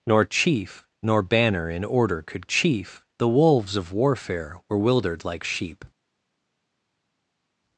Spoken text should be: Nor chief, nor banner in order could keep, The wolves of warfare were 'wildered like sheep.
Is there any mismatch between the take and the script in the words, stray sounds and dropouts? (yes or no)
yes